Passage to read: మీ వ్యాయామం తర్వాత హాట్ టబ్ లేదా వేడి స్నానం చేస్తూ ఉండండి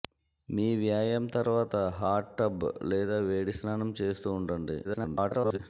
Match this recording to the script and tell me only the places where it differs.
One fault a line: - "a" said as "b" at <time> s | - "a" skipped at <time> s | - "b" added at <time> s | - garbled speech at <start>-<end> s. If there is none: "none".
- garbled speech at 4.8-5.6 s